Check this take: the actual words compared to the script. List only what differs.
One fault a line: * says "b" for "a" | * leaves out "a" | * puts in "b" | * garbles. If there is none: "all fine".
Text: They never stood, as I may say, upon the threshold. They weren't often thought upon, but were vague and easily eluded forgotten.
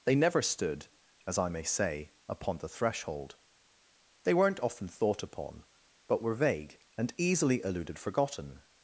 all fine